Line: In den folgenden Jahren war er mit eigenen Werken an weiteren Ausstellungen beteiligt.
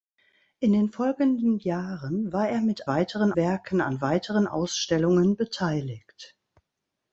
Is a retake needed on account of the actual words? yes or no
yes